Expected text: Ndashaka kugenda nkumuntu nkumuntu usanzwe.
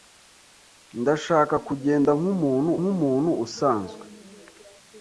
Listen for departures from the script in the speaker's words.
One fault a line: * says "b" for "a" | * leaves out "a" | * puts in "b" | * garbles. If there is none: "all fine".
all fine